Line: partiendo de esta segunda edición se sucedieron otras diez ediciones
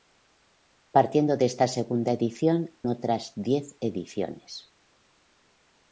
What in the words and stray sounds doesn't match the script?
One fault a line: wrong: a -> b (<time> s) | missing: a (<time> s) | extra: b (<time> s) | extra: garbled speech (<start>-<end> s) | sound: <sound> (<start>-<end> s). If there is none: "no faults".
missing: se sucedieron (2.7 s)